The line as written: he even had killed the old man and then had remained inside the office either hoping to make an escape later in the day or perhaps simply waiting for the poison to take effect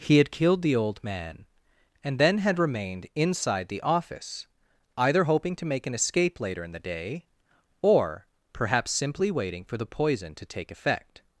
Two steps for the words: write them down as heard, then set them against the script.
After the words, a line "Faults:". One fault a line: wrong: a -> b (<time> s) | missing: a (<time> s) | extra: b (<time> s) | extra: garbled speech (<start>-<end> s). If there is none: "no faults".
he had killed the old man and then had remained inside the office either hoping to make an escape later in the day or perhaps simply waiting for the poison to take effect
Faults:
missing: even (0.2 s)